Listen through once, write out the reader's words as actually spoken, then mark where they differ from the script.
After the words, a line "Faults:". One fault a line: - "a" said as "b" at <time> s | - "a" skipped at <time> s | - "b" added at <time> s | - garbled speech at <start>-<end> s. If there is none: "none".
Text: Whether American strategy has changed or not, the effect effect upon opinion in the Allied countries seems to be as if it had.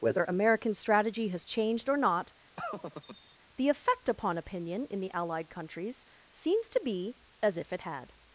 Whether American strategy has changed or not, the effect upon opinion in the Allied countries seems to be as if it had.
Faults:
- "effect" skipped at 4.1 s